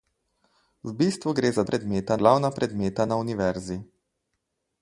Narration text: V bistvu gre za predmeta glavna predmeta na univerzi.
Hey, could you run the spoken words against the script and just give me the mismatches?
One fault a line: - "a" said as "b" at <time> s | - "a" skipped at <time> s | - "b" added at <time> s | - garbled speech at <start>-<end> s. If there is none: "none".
none